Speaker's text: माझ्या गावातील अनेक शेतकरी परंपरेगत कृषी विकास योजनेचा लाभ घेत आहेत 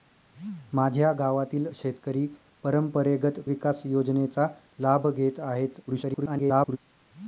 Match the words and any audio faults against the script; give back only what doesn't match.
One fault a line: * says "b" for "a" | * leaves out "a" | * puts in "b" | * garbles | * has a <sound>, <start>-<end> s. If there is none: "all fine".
* leaves out "अनेक"
* leaves out "कृषी"
* garbles